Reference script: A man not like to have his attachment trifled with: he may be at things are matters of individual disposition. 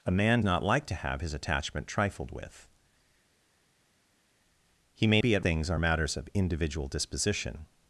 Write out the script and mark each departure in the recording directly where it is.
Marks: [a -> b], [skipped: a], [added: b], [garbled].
A man not like to have his attachment trifled with: he may be at things are matters of individual disposition.